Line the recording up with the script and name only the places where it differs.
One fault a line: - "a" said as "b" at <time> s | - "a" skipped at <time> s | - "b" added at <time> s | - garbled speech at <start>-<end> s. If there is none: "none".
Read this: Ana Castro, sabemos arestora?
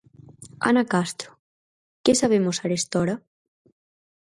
- "que" added at 2.0 s